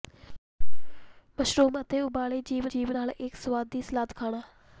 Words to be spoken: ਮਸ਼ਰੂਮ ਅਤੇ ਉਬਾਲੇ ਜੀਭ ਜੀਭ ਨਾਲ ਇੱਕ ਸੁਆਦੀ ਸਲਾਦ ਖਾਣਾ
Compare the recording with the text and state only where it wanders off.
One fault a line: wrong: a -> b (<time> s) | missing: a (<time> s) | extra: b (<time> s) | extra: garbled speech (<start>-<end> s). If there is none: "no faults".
no faults